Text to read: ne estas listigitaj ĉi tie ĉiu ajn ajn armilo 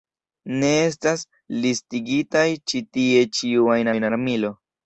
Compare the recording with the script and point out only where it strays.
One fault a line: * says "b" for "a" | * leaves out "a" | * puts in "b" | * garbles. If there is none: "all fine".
all fine